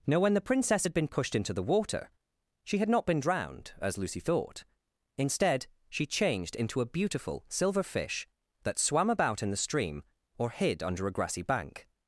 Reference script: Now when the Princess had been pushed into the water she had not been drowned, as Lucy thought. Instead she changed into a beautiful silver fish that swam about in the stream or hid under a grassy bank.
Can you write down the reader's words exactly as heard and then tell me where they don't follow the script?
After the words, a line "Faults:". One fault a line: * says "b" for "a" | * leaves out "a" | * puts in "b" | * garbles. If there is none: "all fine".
Now when the Princess had been pushed into the water she had not been drowned, as Lucy thought. Instead she changed into a beautiful silver fish that swam about in the stream or hid under a grassy bank.
Faults:
all fine